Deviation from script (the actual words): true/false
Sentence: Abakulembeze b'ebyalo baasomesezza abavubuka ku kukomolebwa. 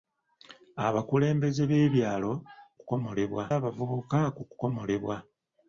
true